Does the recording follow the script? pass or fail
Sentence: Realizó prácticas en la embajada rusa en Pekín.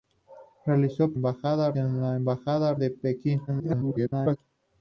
fail